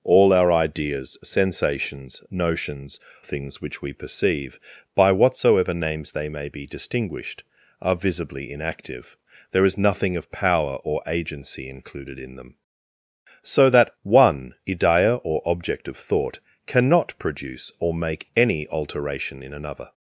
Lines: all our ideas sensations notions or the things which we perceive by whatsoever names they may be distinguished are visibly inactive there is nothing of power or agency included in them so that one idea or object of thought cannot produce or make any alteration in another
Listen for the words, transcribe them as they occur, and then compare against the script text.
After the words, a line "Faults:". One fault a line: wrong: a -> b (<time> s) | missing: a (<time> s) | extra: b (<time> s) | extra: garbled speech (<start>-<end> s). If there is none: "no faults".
all our ideas sensations notions things which we perceive by whatsoever names they may be distinguished are visibly inactive there is nothing of power or agency included in them so that one idea or object of thought cannot produce or make any alteration in another
Faults:
missing: or the (3.0 s)